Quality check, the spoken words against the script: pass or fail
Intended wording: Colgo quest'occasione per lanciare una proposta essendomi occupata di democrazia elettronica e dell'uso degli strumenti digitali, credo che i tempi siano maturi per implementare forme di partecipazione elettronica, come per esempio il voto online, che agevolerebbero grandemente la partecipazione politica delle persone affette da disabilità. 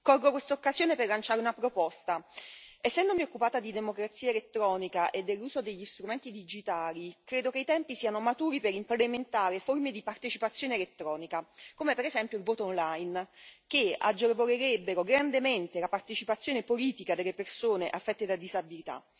pass